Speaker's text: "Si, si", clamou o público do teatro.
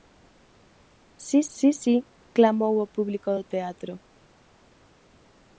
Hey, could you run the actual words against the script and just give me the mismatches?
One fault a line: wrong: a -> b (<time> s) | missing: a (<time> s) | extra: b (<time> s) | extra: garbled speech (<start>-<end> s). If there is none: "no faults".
extra: si (1.8 s)